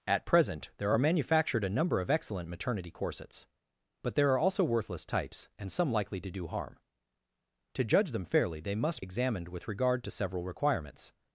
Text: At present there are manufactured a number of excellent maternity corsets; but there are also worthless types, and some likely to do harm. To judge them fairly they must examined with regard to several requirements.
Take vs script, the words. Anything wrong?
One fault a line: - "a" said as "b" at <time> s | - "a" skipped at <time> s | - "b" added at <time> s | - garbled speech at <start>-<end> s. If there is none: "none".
none